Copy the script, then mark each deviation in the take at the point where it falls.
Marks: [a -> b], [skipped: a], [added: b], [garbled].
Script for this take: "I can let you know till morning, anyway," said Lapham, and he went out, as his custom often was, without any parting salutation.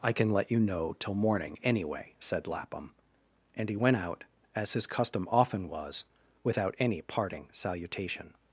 "I can let you know till morning, anyway," said Lapham, and he went out, as his custom often was, without any parting salutation.